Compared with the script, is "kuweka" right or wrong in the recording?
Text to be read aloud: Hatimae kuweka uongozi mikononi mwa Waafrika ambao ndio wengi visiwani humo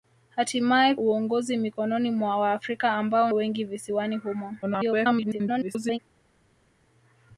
wrong